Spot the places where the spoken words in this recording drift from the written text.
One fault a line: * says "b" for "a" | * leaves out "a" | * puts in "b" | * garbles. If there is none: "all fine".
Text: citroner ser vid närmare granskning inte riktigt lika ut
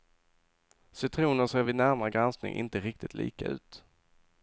all fine